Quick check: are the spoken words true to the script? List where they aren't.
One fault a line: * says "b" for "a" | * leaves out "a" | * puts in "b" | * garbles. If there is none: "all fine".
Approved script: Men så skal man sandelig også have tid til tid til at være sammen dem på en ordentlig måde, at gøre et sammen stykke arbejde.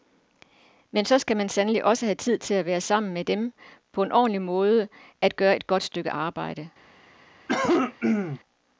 * leaves out "tid til"
* puts in "med"
* says "godt" for "sammen"